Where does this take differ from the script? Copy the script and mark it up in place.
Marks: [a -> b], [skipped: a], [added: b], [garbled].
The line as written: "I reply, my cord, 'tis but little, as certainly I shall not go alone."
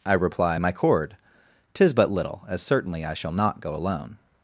"I reply, my cord, 'tis but little, as certainly I shall not go alone."